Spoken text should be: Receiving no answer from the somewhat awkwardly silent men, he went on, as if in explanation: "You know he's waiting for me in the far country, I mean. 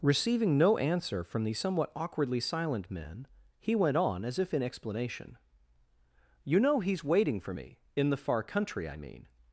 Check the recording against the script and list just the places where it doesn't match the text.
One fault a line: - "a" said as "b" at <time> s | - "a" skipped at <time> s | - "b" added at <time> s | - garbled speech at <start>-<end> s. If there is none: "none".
none